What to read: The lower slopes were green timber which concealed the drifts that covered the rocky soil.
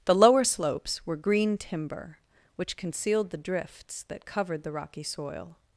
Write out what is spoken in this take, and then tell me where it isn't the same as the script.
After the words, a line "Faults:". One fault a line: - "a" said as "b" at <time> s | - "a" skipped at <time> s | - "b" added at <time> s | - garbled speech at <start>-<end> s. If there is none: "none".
The lower slopes were green timber which concealed the drifts that covered the rocky soil.
Faults:
none